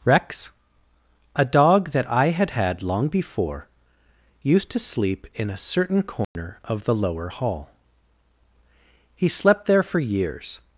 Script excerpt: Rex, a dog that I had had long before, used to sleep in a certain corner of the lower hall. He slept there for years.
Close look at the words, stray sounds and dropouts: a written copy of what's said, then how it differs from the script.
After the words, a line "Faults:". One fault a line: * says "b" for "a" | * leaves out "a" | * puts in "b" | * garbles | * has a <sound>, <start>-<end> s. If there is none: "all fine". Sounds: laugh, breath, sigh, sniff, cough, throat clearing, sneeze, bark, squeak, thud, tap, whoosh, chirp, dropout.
Rex, a dog that I had had long before, used to sleep in a certain corner of the lower hall. He slept there for years.
Faults:
* has a dropout, 6.2-6.4 s